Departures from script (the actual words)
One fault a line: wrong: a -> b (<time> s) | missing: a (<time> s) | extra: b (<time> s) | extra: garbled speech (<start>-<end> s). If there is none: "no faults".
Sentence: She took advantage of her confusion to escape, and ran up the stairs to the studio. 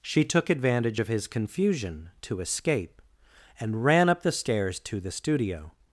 wrong: her -> his (1.1 s)